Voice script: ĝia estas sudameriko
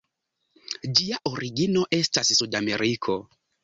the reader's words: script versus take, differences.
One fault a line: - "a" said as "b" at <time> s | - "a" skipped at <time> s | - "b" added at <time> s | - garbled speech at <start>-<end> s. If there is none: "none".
- "origino" added at 1.3 s